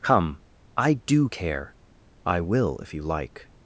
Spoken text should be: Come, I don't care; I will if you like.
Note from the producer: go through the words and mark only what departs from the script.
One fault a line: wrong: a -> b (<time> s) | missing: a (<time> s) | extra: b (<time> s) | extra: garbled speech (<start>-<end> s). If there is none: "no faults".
wrong: don't -> do (1.1 s)